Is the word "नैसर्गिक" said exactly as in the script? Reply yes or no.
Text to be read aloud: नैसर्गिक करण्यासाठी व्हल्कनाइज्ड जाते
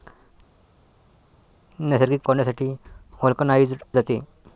yes